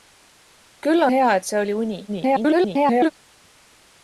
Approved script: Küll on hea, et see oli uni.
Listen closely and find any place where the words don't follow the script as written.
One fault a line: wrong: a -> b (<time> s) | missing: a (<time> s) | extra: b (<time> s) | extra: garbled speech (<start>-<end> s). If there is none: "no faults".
missing: on (1.1 s)
extra: garbled speech (2.1-3.1 s)